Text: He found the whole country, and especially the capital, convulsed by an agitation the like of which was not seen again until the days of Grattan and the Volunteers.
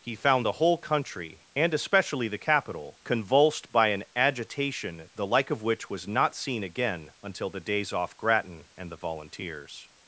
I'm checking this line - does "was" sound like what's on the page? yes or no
yes